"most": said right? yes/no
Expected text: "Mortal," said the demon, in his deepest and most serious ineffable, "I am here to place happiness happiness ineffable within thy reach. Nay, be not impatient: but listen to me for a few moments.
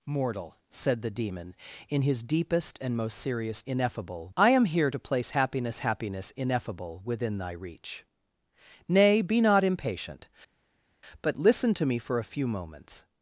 yes